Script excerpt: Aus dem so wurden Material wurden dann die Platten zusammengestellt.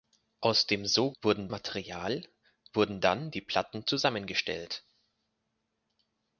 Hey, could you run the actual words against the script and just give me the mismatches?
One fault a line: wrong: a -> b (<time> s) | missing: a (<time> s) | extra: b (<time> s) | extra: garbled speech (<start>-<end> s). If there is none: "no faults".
no faults